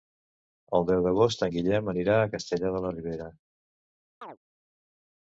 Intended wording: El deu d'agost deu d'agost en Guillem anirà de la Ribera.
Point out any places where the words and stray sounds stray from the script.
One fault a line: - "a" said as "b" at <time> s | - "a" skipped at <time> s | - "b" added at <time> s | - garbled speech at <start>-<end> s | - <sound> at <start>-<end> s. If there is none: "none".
- "deu d'agost" skipped at 1.4 s
- "a Castellar" added at 2.2 s
- chirp at 4.2-4.4 s